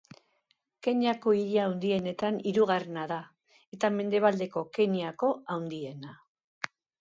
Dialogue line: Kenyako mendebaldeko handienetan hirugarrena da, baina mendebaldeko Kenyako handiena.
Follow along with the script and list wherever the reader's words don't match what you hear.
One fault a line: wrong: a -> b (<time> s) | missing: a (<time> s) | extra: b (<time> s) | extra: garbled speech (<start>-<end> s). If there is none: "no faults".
wrong: mendebaldeko -> hiri (1.4 s)
wrong: baina -> eta (3.8 s)